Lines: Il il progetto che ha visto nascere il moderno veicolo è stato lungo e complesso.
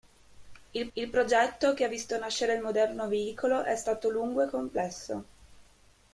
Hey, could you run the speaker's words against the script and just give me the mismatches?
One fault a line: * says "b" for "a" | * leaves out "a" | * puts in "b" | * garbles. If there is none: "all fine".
all fine